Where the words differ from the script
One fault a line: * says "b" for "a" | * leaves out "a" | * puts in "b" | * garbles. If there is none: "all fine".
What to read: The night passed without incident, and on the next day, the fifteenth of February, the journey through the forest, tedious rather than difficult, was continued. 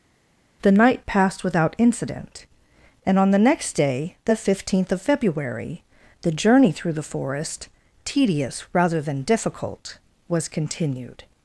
all fine